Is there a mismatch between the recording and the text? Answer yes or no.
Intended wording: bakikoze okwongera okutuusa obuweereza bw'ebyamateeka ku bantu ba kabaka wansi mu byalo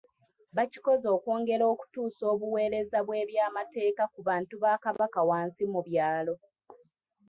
no